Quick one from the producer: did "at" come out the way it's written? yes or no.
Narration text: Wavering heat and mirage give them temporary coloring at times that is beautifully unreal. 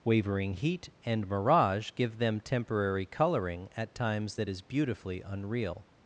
yes